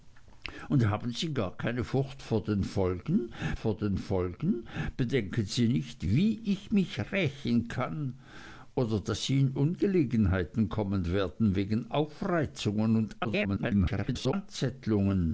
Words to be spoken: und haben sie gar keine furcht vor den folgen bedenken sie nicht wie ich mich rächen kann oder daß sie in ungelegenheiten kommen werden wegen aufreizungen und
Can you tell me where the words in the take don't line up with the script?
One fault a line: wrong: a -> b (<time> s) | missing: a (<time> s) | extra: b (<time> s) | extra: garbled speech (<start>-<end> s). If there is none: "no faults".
extra: vor den folgen (3.6 s)
extra: garbled speech (13.2-14.3 s)